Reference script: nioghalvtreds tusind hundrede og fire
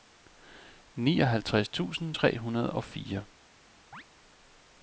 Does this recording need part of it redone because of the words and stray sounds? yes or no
yes